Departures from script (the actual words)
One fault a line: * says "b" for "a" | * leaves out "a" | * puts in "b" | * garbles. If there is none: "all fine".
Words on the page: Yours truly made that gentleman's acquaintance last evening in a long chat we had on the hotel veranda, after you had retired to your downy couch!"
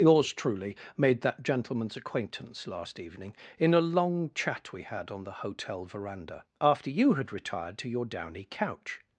all fine